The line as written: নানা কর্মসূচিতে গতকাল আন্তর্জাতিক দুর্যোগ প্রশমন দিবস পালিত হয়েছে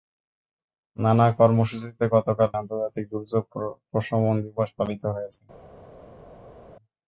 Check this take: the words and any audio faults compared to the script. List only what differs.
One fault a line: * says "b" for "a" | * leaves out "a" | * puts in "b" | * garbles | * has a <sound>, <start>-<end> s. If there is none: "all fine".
all fine